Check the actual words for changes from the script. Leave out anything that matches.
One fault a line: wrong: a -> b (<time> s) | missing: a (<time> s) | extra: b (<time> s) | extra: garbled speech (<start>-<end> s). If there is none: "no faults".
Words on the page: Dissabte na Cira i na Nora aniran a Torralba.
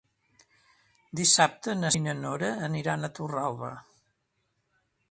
missing: Cira (1.9 s)